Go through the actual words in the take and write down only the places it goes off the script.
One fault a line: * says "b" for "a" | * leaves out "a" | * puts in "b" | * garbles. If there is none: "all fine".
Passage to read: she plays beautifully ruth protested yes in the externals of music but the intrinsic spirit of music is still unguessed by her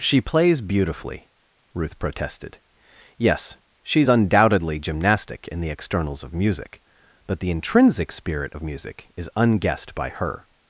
* puts in "she's undoubtedly gymnastic"
* leaves out "still"